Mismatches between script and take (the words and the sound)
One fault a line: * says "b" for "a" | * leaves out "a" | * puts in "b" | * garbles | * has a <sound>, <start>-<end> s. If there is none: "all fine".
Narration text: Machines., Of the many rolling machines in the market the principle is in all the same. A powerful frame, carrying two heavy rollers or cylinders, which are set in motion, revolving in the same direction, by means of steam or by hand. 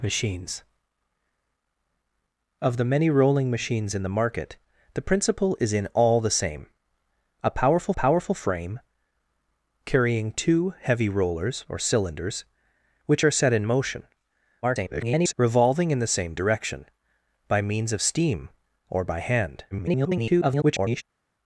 * puts in "powerful"
* garbles
* garbles